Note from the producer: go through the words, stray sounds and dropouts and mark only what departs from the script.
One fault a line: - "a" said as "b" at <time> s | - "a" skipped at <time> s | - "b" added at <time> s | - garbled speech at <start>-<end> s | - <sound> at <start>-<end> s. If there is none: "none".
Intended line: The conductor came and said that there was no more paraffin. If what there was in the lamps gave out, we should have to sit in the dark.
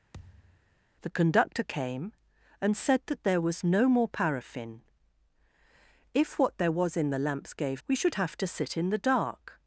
- thud at 0.1-0.8 s
- "out" skipped at 7.8 s